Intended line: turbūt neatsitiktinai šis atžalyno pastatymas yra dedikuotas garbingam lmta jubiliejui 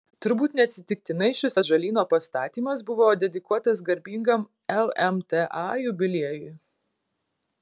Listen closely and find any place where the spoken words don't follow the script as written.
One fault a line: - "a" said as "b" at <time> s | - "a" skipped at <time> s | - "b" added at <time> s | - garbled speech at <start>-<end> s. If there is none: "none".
- "yra" said as "buvo" at 2.9 s